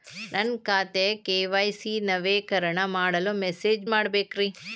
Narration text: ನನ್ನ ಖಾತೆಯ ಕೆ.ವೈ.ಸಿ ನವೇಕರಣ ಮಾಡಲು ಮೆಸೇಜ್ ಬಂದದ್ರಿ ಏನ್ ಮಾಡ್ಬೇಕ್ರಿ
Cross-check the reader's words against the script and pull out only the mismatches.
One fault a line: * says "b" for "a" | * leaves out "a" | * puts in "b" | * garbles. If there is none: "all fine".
* leaves out "ಬಂದದ್ರಿ ಏನ್"